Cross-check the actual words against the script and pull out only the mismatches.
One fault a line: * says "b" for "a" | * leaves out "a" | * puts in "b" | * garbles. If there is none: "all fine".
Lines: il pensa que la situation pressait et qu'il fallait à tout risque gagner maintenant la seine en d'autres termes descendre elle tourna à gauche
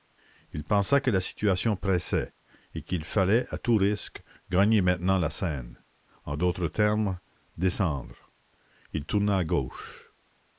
* says "il" for "elle"